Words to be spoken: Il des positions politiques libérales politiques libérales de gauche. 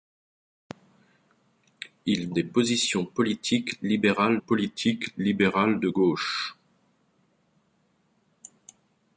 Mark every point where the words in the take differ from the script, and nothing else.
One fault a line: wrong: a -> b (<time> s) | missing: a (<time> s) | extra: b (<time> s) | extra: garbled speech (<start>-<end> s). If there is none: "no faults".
no faults